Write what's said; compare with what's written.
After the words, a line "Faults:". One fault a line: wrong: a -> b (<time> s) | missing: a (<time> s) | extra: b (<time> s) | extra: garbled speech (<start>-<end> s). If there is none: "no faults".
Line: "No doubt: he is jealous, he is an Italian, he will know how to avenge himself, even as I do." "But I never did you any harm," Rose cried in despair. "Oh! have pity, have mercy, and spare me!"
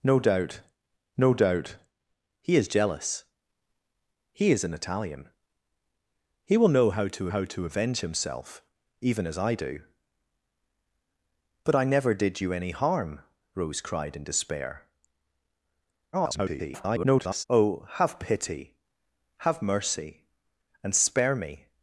"No doubt no doubt: he is jealous, he is an Italian, he will know how to how to avenge himself, even as I do." "But I never did you any harm," Rose cried in despair. [garbled] "Oh! have pity, have mercy, and spare me!"
Faults:
extra: no doubt (1.2 s)
extra: how to (7.3 s)
extra: garbled speech (16.1-17.4 s)